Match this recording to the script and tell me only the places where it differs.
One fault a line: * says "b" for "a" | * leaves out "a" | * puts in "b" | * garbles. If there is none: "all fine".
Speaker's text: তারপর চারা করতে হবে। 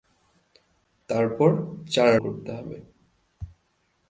all fine